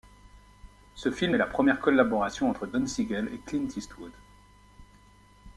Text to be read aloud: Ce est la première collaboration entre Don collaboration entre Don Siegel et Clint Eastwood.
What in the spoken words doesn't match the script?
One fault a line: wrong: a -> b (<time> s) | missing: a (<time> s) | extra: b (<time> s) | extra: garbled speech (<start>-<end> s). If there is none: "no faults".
extra: film (1.1 s)
missing: collaboration entre Don (2.8 s)